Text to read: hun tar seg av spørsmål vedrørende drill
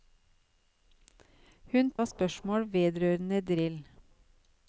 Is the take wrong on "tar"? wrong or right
wrong